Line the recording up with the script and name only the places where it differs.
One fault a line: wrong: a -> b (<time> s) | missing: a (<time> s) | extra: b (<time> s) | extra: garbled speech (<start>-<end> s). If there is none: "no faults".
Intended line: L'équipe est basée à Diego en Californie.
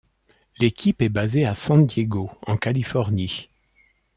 extra: San (1.5 s)